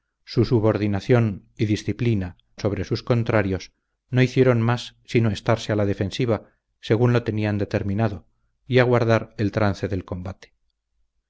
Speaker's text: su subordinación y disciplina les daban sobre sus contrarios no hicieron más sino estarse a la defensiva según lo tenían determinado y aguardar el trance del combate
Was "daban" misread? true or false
true